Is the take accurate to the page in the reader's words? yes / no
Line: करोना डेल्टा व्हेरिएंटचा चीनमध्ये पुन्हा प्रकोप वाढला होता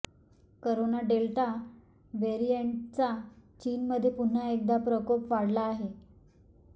no